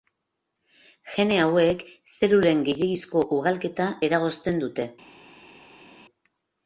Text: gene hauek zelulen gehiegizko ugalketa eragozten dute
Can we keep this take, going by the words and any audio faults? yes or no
yes